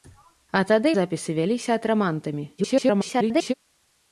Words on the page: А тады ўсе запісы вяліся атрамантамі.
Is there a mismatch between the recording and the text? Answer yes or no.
yes